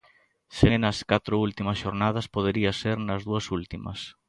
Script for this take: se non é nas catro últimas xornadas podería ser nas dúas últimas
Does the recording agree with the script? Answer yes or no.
no